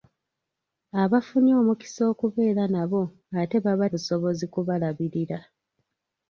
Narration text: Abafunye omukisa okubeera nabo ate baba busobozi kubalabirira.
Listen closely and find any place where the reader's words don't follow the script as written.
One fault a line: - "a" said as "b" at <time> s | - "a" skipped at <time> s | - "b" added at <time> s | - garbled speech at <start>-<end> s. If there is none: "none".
none